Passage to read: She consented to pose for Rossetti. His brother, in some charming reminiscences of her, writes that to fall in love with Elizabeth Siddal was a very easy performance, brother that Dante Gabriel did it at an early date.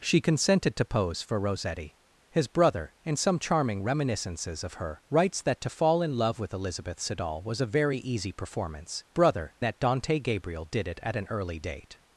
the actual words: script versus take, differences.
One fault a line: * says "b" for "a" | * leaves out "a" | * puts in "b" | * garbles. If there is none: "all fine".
all fine